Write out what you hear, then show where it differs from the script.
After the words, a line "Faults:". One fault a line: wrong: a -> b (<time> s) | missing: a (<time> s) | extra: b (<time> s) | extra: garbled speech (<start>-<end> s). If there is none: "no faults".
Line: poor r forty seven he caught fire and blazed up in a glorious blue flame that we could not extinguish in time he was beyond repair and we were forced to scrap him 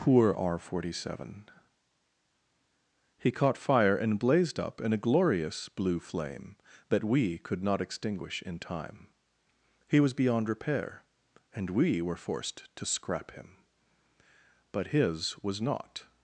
poor r forty seven he caught fire and blazed up in a glorious blue flame that we could not extinguish in time he was beyond repair and we were forced to scrap him but his was not
Faults:
extra: but his was not (14.7 s)